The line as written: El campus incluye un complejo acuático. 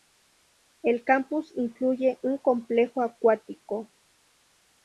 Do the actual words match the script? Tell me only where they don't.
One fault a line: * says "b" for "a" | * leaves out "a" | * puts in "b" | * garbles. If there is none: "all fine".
all fine